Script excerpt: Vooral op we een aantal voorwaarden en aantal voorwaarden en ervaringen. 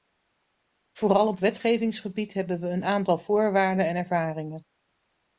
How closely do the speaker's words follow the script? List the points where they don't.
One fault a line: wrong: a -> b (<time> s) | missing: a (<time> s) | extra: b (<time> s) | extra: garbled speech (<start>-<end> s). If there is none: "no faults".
extra: wetgevingsgebied hebben (1.4 s)
missing: aantal voorwaarden en (4.0 s)